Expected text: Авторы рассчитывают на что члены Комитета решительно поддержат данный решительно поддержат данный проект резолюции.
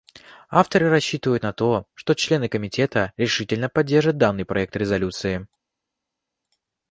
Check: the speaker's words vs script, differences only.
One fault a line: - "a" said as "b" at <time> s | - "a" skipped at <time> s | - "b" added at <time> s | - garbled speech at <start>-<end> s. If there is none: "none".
- "то" added at 1.5 s
- "решительно поддержат данный" skipped at 4.4 s